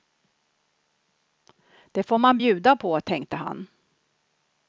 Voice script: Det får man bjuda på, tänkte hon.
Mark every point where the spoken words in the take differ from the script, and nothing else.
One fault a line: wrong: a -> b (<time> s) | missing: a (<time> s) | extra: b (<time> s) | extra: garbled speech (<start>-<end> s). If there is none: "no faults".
wrong: hon -> han (3.4 s)